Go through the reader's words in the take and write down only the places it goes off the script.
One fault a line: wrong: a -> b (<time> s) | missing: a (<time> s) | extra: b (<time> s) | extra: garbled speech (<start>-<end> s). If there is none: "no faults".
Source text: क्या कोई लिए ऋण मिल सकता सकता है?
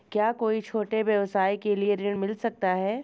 extra: छोटे व्यवसाय के (0.6 s)
missing: सकता (2.7 s)